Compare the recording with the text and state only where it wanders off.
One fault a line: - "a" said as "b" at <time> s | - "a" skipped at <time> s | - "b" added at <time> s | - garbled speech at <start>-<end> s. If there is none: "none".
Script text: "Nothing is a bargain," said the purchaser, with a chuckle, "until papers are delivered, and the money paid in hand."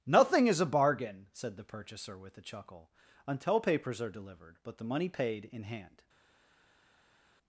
- "and" said as "but" at 4.6 s